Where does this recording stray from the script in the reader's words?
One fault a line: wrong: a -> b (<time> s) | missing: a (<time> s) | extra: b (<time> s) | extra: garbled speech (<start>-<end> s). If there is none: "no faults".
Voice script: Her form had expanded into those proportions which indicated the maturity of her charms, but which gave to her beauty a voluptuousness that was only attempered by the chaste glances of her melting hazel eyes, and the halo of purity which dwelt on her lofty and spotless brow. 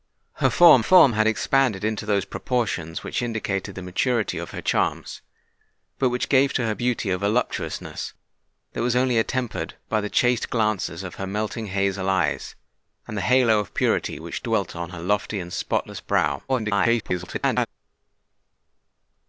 extra: form (0.8 s)
extra: garbled speech (16.5-17.7 s)